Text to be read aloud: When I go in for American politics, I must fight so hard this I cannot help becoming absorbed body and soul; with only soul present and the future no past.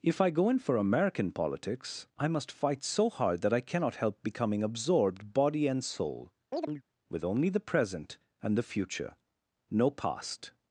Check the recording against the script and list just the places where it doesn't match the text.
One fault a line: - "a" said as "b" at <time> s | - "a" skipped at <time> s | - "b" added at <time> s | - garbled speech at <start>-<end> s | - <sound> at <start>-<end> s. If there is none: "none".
- "When" said as "If" at 0.0 s
- "this" said as "that" at 3.4 s
- chirp at 6.5-6.8 s
- "soul" said as "the" at 7.5 s